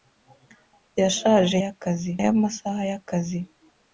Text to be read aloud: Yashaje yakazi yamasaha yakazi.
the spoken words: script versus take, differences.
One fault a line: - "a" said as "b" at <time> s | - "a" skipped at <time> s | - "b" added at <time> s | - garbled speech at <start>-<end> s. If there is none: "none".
none